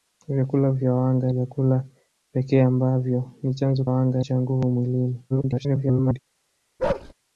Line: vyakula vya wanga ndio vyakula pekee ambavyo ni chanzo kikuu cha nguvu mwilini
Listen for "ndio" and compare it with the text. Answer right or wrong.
wrong